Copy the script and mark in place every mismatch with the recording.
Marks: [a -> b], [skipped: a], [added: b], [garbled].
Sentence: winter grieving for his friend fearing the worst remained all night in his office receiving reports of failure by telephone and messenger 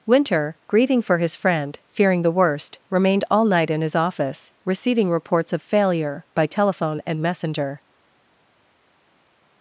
winter grieving for his friend fearing the worst remained all night in his office receiving reports of failure by telephone and messenger